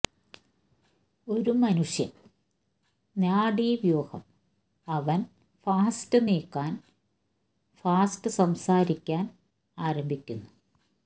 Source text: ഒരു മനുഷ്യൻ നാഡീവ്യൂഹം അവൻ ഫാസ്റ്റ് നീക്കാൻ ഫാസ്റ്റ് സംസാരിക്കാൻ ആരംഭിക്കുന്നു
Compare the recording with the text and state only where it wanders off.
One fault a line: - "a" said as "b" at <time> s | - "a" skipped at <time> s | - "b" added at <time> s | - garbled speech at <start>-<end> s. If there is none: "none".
none